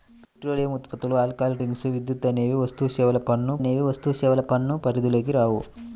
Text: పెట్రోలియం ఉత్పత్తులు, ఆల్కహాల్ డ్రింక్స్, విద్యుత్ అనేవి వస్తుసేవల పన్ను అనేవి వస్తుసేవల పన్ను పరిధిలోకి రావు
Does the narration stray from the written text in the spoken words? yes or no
no